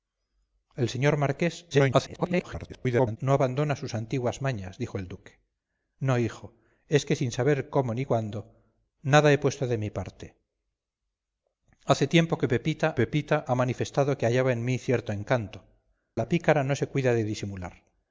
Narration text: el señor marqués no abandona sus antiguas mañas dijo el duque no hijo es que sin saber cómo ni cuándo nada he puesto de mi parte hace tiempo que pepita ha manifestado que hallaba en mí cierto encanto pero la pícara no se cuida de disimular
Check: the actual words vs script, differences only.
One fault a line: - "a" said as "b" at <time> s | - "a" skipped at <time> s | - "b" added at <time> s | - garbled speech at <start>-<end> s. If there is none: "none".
- garbled speech at 1.7-3.2 s
- "pepita" added at 13.0 s
- "pero" skipped at 15.6 s